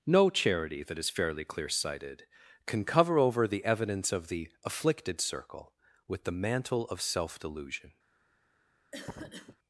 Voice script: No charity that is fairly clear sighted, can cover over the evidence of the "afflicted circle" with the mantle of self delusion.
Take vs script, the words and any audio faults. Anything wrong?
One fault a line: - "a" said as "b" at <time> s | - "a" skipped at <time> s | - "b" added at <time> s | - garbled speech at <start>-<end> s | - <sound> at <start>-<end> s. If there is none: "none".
- cough at 8.9-9.6 s